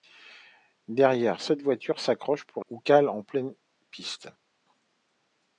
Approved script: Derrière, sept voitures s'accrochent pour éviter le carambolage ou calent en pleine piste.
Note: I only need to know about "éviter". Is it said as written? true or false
false